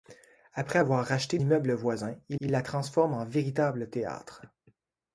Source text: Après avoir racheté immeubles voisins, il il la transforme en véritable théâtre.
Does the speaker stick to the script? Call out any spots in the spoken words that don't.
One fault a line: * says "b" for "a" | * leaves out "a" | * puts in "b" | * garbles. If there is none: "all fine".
all fine